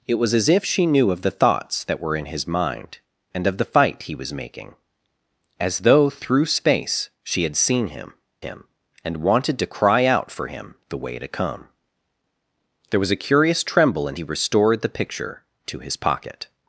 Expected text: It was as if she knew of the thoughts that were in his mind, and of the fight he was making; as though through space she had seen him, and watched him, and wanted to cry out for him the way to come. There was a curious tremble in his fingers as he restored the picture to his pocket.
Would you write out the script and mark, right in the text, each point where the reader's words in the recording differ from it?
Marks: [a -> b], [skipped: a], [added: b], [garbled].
It was as if she knew of the thoughts that were in his mind, and of the fight he was making; as though through space she had seen him, [skipped: and watched] him, and wanted to cry out for him the way to come. There was a curious tremble in [skipped: his fingers as] he restored the picture to his pocket.